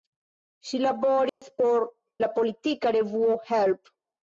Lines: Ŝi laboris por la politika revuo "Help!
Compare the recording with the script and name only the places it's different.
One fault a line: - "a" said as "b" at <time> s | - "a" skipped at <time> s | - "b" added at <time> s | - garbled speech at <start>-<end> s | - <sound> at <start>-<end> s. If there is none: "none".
- dropout at 1.3-1.4 s